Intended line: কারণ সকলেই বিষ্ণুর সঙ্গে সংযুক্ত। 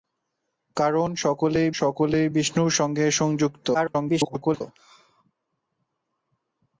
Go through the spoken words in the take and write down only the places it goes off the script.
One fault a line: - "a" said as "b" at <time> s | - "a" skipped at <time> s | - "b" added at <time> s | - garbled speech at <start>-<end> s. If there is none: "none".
- "সকলেই" added at 1.7 s
- garbled speech at 3.7-4.6 s